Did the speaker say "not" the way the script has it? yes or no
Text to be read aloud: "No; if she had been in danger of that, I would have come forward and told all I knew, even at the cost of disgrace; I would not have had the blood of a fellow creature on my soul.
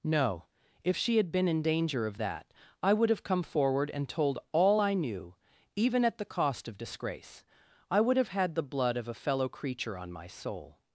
no